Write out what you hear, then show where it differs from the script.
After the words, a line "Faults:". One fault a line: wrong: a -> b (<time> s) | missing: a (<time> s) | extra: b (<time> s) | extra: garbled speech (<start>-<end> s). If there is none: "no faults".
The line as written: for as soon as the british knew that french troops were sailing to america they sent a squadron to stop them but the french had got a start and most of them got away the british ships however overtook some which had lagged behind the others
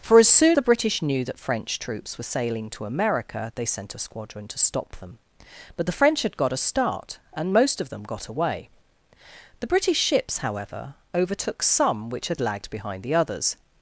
for as soon the british knew that french troops were sailing to america they sent a squadron to stop them but the french had got a start and most of them got away the british ships however overtook some which had lagged behind the others
Faults:
missing: as (0.6 s)